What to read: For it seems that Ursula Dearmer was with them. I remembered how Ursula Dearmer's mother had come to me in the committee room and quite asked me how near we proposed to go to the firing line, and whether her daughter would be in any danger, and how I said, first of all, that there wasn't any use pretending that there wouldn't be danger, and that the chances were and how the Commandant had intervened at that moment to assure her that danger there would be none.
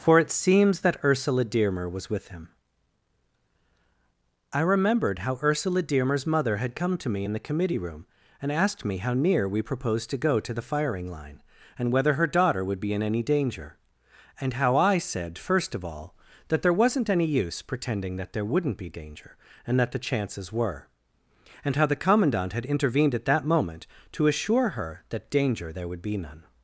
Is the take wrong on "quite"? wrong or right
wrong